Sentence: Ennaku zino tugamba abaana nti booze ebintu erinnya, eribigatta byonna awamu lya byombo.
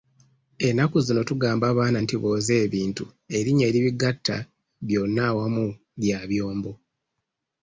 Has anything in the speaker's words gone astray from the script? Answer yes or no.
no